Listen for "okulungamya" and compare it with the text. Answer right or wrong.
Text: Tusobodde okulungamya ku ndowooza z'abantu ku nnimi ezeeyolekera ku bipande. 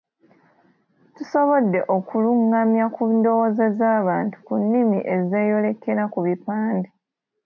right